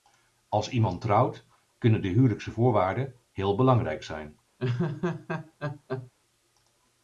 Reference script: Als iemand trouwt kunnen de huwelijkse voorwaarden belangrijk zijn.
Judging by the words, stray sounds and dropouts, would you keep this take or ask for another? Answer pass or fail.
fail